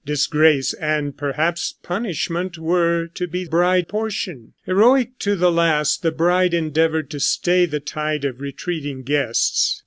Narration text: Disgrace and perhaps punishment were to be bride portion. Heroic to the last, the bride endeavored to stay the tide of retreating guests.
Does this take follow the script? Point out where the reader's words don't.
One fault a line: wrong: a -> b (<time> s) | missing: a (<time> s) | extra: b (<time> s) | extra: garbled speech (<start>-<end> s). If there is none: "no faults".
no faults